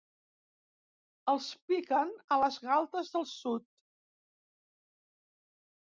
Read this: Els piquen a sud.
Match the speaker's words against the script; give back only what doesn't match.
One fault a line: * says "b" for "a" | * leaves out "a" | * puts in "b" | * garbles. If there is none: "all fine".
* puts in "les galtes del"